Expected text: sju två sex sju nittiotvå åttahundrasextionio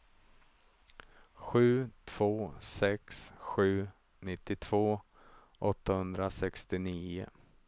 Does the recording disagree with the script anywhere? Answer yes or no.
no